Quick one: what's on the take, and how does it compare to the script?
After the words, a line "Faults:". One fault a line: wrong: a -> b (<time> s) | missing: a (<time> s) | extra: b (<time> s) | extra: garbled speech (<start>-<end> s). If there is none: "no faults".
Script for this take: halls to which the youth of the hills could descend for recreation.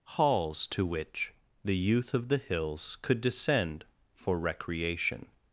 halls to which the youth of the hills could descend for recreation.
Faults:
no faults